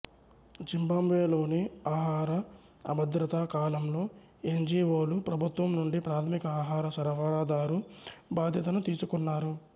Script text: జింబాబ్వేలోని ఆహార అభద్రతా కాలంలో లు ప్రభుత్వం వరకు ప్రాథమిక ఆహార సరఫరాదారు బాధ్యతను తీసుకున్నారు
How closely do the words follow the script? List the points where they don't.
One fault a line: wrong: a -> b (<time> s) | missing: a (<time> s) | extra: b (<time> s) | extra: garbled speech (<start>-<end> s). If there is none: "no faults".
extra: ఎన్ జి ఒ (4.5 s)
wrong: వరకు -> నుండి (5.8 s)